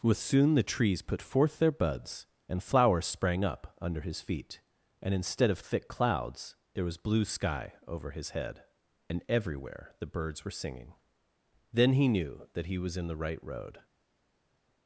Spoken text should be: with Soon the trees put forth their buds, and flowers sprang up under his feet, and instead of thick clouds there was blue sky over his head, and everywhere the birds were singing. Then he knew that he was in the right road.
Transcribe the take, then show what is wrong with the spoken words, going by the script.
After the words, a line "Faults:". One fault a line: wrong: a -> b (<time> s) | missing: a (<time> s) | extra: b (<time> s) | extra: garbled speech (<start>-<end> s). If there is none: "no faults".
with Soon the trees put forth their buds, and flowers sprang up under his feet, and instead of thick clouds there was blue sky over his head, and everywhere the birds were singing. Then he knew that he was in the right road.
Faults:
no faults